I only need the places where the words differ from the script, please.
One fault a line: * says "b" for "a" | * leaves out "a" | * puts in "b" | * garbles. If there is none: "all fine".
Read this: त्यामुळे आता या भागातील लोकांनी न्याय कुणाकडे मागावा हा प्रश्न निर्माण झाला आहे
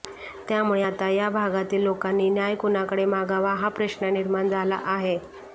all fine